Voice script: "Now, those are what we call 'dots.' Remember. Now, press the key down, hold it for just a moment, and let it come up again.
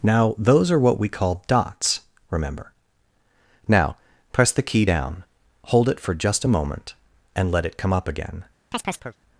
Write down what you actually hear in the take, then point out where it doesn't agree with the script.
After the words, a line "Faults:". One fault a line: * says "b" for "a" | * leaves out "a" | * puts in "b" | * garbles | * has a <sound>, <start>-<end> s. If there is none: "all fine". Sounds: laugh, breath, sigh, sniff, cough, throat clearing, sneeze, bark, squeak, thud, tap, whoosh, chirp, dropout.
"Now, those are what we call 'dots.' Remember. Now, press the key down, hold it for just a moment, and let it come up again.
Faults:
* has a chirp, 8.7-9.2 s